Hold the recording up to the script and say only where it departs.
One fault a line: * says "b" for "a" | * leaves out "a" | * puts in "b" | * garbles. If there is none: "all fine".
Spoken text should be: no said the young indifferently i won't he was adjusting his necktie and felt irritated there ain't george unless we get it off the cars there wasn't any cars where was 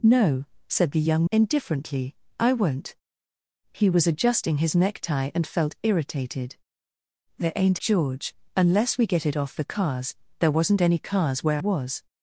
all fine